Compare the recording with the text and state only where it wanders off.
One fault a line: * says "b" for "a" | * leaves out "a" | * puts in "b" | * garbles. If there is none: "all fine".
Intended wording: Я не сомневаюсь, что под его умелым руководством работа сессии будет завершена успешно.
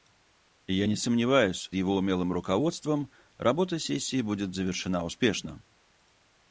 * leaves out "что под"